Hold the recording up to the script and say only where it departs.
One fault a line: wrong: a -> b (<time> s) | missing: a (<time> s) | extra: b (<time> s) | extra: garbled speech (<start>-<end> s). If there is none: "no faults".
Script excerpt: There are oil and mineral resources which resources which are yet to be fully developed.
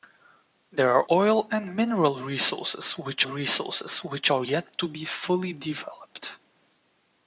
no faults